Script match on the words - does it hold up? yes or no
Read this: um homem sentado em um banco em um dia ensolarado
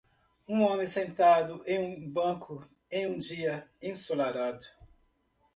yes